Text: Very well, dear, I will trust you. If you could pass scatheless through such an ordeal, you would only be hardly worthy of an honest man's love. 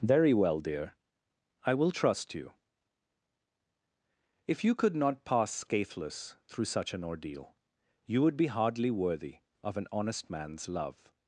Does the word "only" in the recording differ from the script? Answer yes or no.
yes